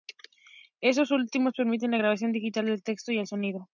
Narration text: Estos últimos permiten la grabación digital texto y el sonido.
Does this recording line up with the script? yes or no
no